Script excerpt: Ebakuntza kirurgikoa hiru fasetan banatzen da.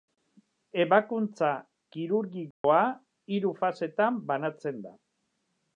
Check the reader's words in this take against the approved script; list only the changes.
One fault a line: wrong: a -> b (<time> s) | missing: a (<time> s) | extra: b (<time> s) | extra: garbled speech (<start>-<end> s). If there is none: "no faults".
no faults